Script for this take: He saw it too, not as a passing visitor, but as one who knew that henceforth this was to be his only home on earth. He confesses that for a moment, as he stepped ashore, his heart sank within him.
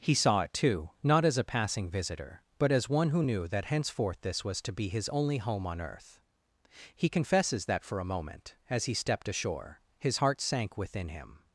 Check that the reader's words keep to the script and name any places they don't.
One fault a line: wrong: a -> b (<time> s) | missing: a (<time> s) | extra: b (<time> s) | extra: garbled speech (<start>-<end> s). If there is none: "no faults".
no faults